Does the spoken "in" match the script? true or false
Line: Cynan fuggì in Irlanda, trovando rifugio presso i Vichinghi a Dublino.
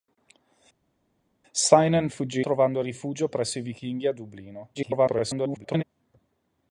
false